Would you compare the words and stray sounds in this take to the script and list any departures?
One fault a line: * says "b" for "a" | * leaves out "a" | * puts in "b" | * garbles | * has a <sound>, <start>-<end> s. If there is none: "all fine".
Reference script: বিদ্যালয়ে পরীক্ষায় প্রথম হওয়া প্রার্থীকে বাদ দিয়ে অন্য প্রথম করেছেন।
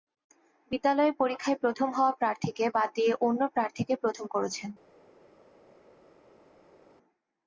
* puts in "প্রার্থীকে"